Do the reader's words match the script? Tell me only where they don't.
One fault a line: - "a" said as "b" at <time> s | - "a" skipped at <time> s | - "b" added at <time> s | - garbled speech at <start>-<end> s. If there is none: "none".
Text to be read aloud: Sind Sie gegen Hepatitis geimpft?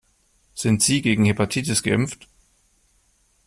none